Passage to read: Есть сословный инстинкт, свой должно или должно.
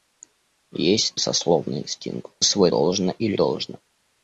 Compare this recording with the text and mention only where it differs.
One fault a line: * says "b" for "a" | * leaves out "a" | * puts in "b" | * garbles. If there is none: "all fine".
all fine